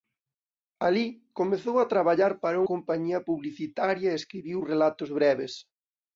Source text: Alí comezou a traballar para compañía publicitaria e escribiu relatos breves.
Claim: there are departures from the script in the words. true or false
false